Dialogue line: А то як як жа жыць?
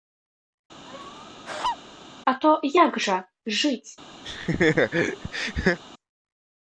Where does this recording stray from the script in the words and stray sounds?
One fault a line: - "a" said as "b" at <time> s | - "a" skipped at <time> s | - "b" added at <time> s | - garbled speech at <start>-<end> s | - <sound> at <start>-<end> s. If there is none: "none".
- laugh at 0.9-1.8 s
- "як" skipped at 3.0 s
- laugh at 4.2-5.8 s